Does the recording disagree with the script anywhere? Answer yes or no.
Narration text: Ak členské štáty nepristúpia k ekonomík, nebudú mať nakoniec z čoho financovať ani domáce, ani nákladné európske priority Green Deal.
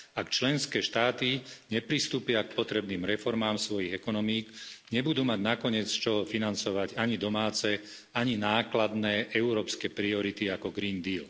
yes